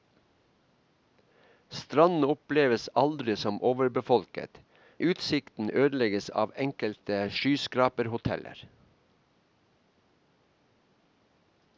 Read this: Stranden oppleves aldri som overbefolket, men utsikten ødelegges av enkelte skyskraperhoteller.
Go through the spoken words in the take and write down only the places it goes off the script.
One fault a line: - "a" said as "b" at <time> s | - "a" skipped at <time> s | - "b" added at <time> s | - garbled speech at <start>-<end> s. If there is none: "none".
- "men" skipped at 4.6 s